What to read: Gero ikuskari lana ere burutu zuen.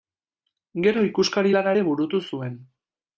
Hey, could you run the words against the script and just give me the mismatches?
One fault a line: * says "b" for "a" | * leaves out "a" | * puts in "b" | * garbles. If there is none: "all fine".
all fine